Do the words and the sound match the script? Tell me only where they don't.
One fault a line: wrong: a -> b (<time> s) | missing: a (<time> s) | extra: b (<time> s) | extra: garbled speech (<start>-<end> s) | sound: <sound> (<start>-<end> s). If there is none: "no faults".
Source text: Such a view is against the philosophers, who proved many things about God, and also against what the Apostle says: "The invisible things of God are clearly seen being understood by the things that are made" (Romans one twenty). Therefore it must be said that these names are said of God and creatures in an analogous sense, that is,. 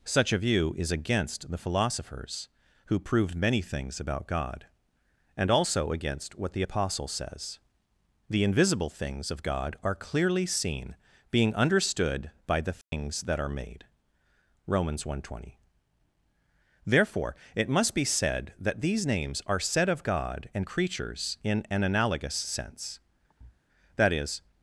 sound: dropout (12.8-12.9 s)
sound: thud (23.3-23.6 s)